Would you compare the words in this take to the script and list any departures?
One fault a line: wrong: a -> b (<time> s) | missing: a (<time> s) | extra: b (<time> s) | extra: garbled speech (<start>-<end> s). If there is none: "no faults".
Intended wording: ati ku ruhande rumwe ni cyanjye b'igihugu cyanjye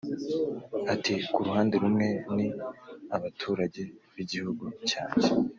wrong: cyanjye -> abaturage (3.2 s)